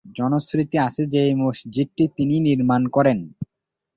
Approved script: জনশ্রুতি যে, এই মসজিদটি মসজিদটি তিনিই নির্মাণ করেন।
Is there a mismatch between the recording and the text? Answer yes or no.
yes